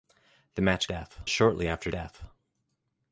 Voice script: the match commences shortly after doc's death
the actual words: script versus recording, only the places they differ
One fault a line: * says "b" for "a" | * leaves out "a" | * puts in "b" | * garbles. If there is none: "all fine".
* says "death" for "commences"
* leaves out "doc's"